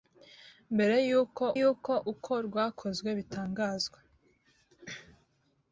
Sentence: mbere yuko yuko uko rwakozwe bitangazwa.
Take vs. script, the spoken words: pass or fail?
pass